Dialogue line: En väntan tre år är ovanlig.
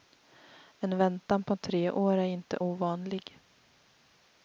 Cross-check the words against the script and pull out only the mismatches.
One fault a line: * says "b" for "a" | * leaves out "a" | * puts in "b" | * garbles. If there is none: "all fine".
* puts in "på"
* puts in "inte"